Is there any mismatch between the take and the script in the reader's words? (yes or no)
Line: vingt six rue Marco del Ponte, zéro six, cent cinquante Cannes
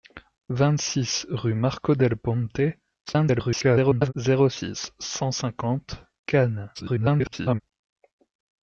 yes